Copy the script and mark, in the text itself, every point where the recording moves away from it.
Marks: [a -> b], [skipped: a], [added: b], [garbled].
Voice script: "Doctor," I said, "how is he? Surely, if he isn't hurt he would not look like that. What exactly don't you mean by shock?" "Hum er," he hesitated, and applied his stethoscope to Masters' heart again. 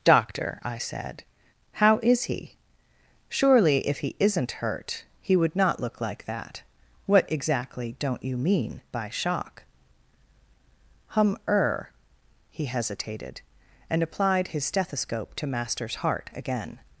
"Doctor," I said, "how is he? Surely, if he isn't hurt he would not look like that. What exactly don't you mean by shock?" "Hum er," he hesitated, and applied his stethoscope to Masters' heart again.